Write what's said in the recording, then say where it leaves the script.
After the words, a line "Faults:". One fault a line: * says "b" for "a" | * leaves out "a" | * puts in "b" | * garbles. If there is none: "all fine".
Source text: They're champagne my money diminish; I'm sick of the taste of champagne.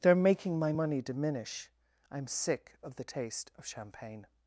They're making my money diminish; I'm sick of the taste of champagne.
Faults:
* says "making" for "champagne"